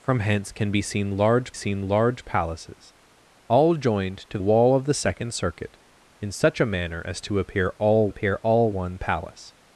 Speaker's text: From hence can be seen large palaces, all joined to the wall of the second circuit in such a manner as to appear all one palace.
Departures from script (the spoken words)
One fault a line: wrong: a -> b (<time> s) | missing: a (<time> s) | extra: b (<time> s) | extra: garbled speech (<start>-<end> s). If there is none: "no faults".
extra: seen large (1.5 s)
missing: the (4.4 s)
extra: appear all (8.1 s)